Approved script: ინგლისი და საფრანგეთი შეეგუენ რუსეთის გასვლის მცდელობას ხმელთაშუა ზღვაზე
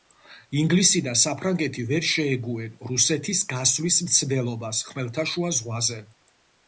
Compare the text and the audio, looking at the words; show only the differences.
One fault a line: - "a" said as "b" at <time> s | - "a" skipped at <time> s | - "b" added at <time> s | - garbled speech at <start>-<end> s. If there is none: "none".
- "ვერ" added at 1.9 s